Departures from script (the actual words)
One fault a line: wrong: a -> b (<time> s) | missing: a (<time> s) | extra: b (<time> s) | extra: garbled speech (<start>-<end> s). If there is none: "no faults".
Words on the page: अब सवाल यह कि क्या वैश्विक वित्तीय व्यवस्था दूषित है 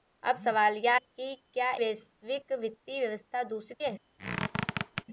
no faults